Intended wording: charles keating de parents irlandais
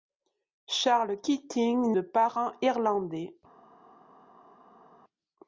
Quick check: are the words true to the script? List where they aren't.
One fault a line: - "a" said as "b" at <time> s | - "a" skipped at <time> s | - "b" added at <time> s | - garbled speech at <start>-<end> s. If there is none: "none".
none